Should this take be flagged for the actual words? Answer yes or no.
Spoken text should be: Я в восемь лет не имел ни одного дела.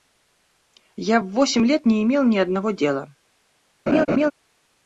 no